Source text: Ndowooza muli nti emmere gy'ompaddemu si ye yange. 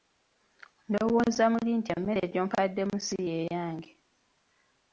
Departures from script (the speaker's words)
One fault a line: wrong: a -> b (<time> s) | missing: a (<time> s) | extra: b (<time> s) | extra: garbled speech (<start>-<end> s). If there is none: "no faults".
no faults